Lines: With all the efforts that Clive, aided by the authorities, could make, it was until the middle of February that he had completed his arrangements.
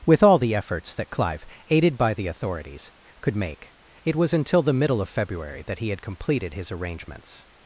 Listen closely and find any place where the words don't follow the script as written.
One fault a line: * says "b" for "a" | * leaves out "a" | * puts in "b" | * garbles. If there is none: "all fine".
all fine